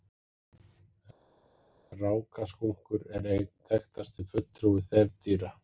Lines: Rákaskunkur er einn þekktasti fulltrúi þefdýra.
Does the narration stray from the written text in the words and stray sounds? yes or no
no